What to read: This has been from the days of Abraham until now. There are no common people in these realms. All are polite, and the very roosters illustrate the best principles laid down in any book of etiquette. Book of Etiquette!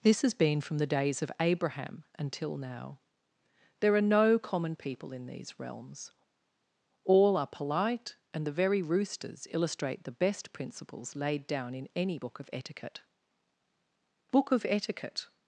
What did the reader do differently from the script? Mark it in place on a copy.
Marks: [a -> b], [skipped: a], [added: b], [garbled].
This has been from the days of Abraham until now. There are no common people in these realms. All are polite, and the very roosters illustrate the best principles laid down in any book of etiquette. Book of Etiquette!